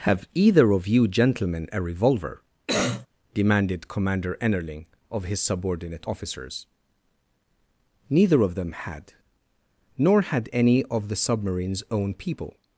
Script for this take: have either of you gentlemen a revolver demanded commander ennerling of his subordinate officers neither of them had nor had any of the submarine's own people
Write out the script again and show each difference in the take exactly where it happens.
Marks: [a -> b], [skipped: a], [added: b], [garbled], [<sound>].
have either of you gentlemen a revolver [cough] demanded commander ennerling of his subordinate officers neither of them had nor had any of the submarine's own people